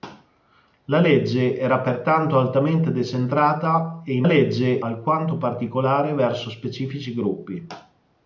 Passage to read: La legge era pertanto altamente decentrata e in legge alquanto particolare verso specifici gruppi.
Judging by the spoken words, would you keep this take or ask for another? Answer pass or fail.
pass